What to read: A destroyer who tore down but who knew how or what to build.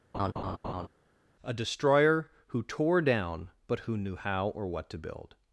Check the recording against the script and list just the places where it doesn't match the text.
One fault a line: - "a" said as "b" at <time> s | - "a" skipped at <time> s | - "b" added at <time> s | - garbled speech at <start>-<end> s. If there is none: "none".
none